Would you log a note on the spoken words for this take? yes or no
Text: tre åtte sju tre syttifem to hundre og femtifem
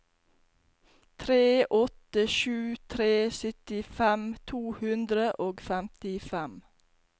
no